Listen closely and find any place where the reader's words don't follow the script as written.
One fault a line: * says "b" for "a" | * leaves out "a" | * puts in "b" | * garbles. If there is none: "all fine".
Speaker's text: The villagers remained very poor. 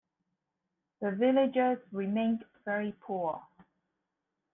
all fine